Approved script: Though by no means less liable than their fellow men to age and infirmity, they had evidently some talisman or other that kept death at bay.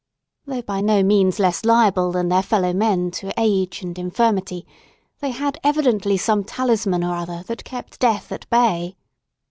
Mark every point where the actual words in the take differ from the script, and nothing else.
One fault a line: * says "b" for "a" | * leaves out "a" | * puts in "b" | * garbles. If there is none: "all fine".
all fine